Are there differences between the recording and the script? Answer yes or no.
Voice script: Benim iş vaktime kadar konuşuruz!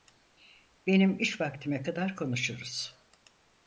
no